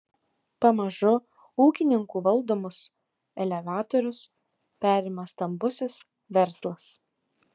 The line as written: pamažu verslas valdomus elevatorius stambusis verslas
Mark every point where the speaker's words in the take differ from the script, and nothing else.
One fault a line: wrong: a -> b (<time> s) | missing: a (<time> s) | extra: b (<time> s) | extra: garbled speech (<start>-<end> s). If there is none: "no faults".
wrong: verslas -> ūkininkų (1.6 s)
extra: perima (4.9 s)